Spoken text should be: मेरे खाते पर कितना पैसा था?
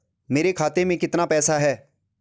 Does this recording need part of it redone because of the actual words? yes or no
yes